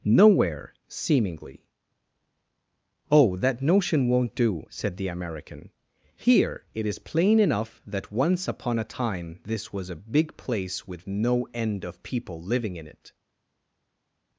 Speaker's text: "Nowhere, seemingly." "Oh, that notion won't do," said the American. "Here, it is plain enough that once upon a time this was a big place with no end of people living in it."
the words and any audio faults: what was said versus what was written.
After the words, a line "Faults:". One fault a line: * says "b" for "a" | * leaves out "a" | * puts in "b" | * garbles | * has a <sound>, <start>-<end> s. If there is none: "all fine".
"Nowhere, seemingly." "Oh, that notion won't do," said the American. "Here, it is plain enough that once upon a time this was a big place with no end of people living in it."
Faults:
all fine